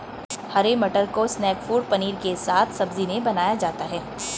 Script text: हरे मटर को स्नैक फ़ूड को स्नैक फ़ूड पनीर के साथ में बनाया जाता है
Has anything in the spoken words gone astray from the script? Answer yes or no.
yes